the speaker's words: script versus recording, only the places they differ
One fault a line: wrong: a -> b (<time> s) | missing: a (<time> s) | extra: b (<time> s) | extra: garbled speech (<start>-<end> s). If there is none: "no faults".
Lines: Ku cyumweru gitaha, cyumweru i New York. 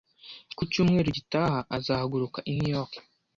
wrong: cyumweru -> azahaguruka (1.8 s)